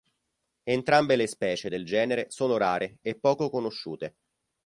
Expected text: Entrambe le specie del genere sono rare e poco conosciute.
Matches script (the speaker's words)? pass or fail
pass